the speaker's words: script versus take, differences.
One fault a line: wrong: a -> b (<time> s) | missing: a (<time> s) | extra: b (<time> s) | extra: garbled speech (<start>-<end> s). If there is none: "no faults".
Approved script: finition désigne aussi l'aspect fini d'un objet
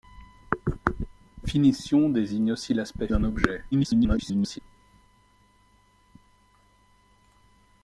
missing: fini (3.1 s)
extra: garbled speech (3.7-4.6 s)